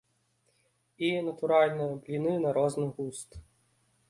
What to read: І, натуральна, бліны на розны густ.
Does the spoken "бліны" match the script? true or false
true